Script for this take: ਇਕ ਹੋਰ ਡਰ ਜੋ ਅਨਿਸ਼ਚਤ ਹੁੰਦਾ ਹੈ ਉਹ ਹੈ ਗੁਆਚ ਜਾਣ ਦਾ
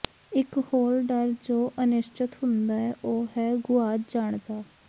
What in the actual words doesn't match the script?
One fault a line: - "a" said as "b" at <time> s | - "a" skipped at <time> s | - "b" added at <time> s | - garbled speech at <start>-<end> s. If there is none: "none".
none